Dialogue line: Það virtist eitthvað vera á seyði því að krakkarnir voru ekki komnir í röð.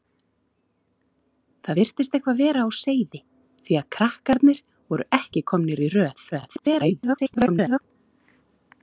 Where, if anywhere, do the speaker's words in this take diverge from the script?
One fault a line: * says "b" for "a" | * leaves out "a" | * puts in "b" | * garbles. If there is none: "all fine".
* garbles